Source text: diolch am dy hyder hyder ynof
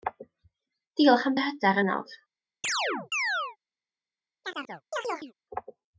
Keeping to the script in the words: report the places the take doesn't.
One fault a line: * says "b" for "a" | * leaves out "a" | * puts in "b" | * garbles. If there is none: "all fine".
* leaves out "hyder"